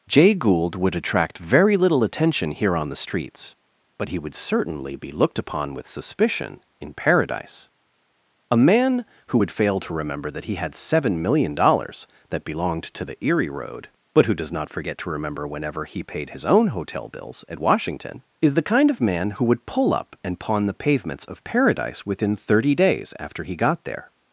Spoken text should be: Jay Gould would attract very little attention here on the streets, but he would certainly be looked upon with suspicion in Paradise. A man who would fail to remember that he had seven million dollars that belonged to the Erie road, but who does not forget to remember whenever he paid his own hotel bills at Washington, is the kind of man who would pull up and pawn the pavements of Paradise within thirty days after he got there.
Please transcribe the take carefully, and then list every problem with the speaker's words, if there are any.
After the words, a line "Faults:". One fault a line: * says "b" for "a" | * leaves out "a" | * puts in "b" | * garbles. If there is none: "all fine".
Jay Gould would attract very little attention here on the streets, but he would certainly be looked upon with suspicion in Paradise. A man who would fail to remember that he had seven million dollars that belonged to the Erie road, but who does not forget to remember whenever he paid his own hotel bills at Washington, is the kind of man who would pull up and pawn the pavements of Paradise within thirty days after he got there.
Faults:
all fine